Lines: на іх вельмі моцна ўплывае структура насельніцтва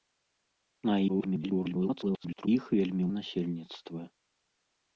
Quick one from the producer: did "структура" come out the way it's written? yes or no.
no